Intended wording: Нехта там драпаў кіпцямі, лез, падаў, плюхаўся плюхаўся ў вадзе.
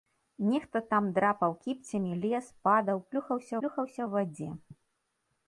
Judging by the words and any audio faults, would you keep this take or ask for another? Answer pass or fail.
pass